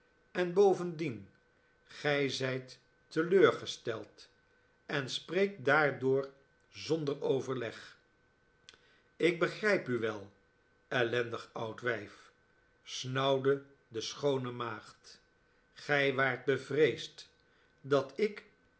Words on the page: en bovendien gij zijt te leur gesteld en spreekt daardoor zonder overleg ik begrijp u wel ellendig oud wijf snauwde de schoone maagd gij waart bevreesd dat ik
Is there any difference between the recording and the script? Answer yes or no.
no